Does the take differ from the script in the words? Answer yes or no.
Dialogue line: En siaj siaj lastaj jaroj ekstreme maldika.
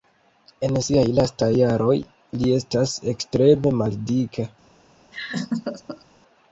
yes